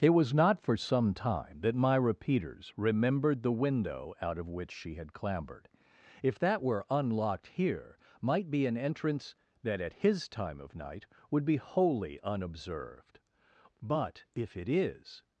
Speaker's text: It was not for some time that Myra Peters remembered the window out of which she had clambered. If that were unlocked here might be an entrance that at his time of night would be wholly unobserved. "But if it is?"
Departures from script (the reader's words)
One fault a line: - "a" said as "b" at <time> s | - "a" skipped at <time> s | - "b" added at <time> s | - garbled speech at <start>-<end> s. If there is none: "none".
none